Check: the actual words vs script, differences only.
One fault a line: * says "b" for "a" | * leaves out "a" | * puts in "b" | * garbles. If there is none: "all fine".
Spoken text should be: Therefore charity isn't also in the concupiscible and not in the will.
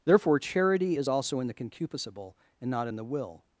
* says "is" for "isn't"